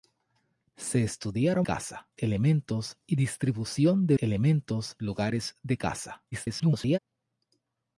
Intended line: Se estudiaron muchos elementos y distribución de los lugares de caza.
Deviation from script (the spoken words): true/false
true